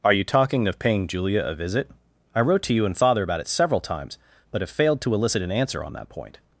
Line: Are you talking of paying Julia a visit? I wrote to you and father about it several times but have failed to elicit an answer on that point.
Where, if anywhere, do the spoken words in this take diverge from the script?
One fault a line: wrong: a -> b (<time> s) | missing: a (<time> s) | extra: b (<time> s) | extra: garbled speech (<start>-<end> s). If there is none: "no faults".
no faults